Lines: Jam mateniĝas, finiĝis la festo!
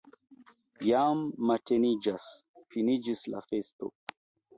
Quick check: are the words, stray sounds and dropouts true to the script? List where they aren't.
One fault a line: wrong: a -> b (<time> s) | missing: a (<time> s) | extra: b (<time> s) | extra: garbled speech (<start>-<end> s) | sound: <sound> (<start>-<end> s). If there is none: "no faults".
no faults